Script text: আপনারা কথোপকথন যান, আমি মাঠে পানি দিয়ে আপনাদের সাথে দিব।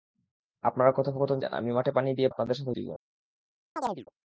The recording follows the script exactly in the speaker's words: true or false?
true